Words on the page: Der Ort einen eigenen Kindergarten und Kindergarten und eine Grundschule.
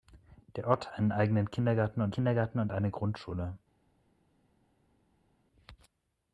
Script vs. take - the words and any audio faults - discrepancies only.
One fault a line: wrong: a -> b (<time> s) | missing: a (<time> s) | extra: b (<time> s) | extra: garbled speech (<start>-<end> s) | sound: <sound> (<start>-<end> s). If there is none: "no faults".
no faults